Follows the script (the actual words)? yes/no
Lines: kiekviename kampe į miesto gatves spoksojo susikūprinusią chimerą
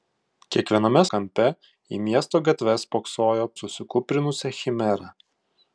yes